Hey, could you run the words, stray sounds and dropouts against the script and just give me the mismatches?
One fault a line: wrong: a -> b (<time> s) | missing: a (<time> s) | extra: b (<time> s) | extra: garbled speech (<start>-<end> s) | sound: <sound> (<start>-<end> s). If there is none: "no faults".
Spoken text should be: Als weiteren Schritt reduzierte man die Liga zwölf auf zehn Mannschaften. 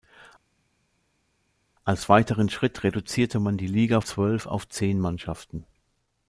no faults